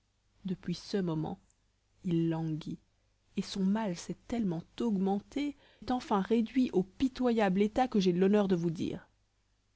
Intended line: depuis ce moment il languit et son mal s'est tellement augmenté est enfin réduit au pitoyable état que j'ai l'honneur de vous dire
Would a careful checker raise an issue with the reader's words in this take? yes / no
no